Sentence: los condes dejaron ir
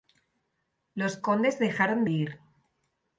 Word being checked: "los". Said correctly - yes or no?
yes